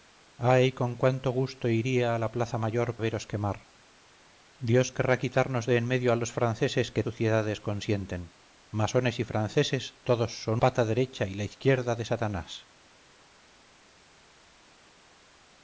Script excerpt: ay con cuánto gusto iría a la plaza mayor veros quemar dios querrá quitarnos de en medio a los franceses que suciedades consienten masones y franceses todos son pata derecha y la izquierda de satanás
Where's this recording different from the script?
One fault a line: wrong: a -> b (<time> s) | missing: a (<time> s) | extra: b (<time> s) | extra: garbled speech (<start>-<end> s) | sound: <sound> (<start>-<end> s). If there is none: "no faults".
no faults